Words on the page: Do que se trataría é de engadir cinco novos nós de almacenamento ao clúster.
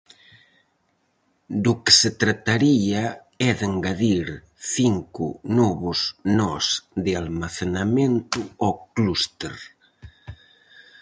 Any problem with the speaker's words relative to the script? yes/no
no